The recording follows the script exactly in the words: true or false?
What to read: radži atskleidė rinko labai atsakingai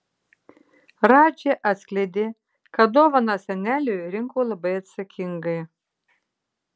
false